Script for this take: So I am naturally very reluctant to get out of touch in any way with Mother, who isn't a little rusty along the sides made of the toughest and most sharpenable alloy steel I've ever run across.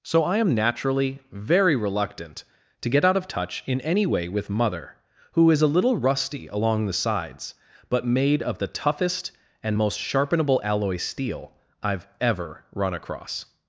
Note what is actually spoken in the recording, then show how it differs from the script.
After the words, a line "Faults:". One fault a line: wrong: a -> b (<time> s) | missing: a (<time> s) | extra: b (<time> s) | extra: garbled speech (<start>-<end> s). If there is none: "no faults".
So I am naturally very reluctant to get out of touch in any way with Mother, who is a little rusty along the sides but made of the toughest and most sharpenable alloy steel I've ever run across.
Faults:
wrong: isn't -> is (5.5 s)
extra: but (7.9 s)